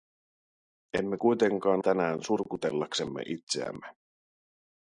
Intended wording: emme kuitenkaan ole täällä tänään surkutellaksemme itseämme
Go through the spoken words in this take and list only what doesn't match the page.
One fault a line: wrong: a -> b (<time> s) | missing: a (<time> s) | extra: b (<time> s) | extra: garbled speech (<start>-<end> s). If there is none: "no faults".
missing: ole täällä (1.8 s)